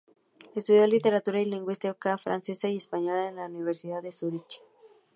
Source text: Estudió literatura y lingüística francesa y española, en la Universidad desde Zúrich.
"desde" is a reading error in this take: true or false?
true